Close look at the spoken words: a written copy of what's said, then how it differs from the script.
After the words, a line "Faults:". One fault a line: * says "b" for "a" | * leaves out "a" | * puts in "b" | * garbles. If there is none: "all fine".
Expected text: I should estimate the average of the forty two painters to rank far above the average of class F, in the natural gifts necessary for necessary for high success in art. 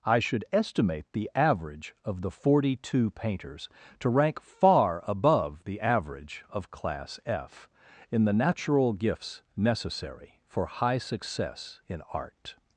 I should estimate the average of the forty two painters to rank far above the average of class F, in the natural gifts necessary for high success in art.
Faults:
* leaves out "necessary for"